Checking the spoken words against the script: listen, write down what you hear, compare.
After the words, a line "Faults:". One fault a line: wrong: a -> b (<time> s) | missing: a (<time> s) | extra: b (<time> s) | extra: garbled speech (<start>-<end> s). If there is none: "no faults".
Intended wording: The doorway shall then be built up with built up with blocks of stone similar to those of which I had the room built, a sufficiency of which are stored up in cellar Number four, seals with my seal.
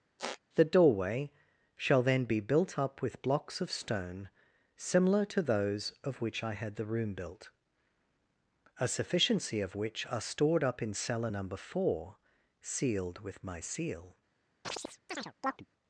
The doorway shall then be built up with blocks of stone similar to those of which I had the room built, a sufficiency of which are stored up in cellar Number four, sealed with my seal.
Faults:
missing: built up with (3.2 s)
wrong: seals -> sealed (12.6 s)